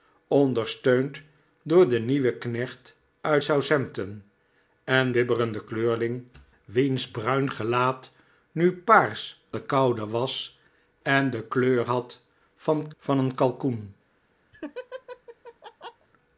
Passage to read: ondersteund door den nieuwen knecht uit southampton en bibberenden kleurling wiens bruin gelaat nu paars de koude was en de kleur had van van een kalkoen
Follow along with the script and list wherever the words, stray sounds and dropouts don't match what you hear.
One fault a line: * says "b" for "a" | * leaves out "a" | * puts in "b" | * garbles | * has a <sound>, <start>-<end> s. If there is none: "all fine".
* has a laugh, 14.5-16.1 s